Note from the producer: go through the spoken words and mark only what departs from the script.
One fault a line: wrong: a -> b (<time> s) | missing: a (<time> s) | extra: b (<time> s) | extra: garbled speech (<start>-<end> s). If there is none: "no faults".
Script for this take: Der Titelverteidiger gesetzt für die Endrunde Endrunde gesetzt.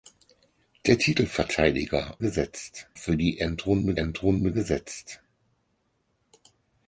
no faults